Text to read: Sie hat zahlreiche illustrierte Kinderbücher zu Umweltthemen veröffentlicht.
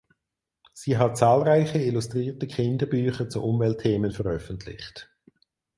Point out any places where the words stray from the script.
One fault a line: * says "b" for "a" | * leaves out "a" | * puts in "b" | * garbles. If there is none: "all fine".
all fine